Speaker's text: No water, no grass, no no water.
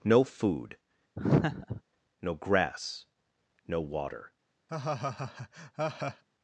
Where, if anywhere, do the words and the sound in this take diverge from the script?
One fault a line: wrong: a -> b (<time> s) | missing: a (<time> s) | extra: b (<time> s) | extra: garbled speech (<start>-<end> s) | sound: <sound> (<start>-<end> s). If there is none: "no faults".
wrong: water -> food (0.2 s)
sound: laugh (1.2-1.8 s)
missing: no (3.8 s)
sound: laugh (4.7-6.2 s)